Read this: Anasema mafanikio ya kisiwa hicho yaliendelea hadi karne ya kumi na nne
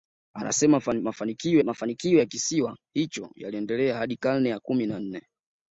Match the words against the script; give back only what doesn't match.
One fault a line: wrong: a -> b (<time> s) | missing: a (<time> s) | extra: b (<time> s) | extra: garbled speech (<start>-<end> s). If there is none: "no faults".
extra: mafanikio (1.6 s)